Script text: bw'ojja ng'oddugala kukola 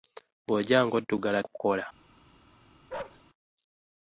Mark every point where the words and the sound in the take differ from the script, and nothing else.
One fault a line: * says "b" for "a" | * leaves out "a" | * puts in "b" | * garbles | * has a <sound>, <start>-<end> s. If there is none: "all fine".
* has a bark, 2.9-3.2 s